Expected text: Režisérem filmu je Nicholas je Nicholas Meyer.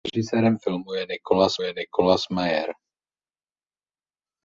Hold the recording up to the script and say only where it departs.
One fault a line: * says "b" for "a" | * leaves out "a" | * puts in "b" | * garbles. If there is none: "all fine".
all fine